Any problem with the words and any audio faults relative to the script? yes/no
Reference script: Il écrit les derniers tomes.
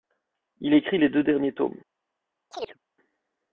yes